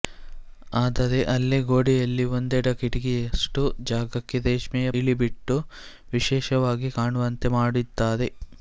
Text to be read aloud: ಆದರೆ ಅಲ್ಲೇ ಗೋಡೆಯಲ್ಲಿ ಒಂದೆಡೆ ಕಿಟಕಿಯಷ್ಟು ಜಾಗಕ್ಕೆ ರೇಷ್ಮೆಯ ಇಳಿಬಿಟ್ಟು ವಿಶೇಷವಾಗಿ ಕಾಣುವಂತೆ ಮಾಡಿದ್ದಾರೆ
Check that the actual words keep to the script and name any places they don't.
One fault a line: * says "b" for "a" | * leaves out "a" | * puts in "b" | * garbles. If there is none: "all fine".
all fine